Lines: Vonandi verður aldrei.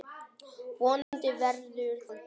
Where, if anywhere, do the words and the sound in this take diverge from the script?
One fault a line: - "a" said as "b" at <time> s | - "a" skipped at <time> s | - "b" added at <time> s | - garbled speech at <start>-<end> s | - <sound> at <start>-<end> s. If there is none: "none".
- dropout at 1.0-1.1 s